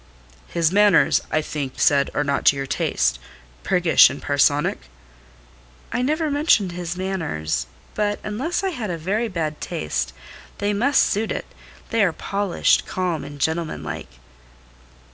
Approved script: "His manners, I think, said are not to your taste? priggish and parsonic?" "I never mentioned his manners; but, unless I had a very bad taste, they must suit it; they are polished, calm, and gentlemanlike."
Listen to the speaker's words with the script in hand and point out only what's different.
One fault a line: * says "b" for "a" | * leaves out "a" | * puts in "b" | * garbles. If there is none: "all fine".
all fine